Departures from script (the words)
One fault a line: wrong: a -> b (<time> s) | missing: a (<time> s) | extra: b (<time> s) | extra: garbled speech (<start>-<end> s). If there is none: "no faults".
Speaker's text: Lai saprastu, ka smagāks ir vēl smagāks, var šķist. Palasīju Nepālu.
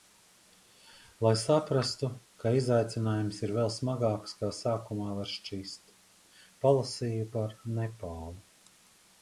wrong: smagāks -> izaicinājums (2.6 s)
extra: kā sākumā (4.4 s)
extra: par (7.4 s)